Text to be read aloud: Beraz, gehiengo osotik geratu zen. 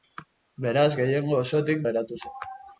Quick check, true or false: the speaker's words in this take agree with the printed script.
true